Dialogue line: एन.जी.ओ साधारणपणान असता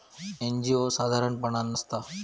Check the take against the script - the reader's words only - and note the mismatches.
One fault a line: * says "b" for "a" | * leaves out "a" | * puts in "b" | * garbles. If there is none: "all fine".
all fine